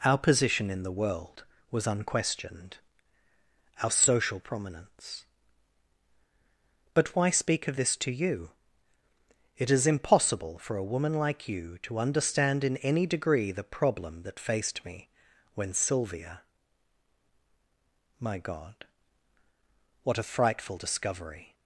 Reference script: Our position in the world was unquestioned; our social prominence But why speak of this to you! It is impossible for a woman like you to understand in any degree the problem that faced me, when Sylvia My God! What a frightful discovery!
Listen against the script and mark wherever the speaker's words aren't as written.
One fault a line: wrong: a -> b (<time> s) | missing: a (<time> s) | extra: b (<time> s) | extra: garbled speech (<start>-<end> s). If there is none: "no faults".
no faults